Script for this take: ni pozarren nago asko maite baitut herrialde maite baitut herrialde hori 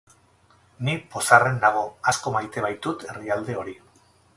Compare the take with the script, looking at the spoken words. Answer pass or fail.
fail